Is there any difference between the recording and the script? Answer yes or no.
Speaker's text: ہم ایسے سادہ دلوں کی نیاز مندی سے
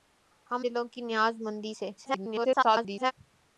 yes